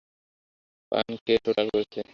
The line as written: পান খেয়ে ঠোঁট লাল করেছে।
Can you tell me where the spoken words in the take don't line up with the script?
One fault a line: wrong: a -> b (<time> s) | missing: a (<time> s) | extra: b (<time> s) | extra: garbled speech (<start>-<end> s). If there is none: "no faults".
no faults